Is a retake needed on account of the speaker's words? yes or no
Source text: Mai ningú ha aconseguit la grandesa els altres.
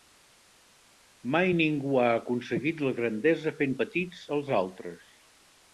yes